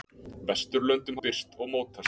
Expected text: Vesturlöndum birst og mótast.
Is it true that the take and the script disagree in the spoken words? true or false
false